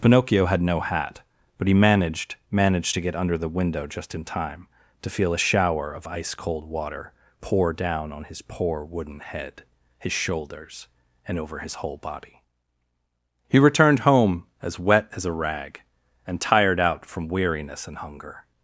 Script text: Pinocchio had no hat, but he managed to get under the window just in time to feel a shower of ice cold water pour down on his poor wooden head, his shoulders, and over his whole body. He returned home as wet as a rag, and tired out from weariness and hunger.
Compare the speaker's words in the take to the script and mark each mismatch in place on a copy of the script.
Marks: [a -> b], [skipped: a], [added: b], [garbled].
Pinocchio had no hat, but he managed [added: managed] to get under the window just in time to feel a shower of ice cold water pour down on his poor wooden head, his shoulders, and over his whole body. He returned home as wet as a rag, and tired out from weariness and hunger.